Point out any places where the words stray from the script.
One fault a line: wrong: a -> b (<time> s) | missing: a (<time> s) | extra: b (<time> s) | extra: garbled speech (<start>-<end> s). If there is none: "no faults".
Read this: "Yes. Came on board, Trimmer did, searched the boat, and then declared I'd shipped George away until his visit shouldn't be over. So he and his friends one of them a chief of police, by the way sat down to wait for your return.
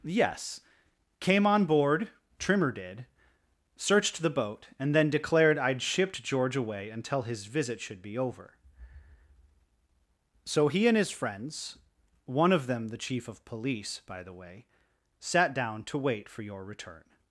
wrong: shouldn't -> should (7.8 s)
wrong: a -> the (12.9 s)